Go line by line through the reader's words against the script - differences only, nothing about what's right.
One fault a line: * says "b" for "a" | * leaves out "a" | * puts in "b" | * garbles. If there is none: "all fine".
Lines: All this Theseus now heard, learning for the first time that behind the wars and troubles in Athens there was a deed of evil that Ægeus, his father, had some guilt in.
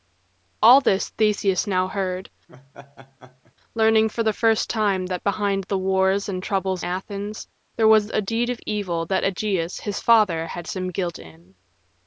* leaves out "in"